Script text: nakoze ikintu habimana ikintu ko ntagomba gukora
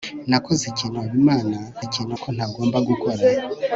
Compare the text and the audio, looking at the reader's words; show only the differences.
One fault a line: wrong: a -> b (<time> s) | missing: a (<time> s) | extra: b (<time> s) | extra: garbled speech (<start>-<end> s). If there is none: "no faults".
no faults